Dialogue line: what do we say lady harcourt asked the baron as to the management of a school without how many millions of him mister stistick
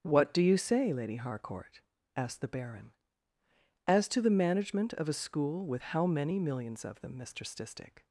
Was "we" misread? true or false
true